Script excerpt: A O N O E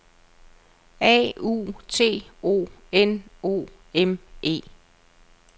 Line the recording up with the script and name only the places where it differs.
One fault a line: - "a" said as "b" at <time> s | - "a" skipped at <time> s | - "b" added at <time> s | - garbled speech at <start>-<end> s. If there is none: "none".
- "U T" added at 1.4 s
- "M" added at 3.9 s